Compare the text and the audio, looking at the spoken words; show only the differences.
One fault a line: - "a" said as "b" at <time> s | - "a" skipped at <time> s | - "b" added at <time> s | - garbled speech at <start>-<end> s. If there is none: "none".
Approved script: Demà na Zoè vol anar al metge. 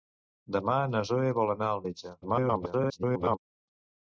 - garbled speech at 2.2-3.4 s